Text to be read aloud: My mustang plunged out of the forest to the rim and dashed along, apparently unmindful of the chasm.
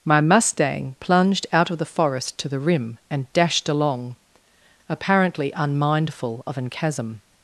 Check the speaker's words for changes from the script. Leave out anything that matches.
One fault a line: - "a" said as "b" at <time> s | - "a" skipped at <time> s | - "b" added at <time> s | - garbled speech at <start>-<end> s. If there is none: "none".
- "the" said as "an" at 6.6 s